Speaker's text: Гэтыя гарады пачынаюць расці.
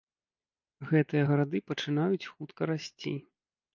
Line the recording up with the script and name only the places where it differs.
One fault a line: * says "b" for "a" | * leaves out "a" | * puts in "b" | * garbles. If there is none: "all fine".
* puts in "хутка"